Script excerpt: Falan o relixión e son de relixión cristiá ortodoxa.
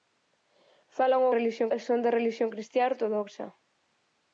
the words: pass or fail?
pass